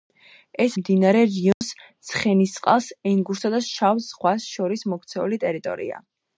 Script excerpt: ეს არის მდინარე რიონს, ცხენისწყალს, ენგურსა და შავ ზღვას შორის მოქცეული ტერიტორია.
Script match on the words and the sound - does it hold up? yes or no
no